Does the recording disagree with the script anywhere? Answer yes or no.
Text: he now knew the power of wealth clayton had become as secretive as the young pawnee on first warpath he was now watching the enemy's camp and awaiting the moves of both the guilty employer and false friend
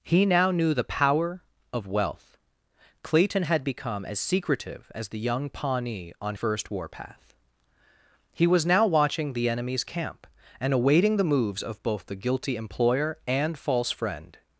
no